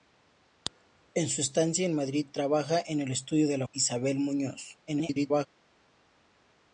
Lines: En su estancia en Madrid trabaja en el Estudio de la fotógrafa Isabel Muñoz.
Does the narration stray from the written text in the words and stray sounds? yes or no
yes